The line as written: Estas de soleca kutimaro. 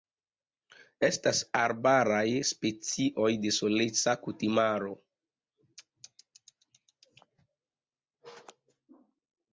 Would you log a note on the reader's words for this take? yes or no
yes